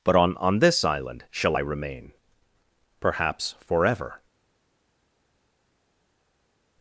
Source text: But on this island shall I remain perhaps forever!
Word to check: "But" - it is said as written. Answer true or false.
true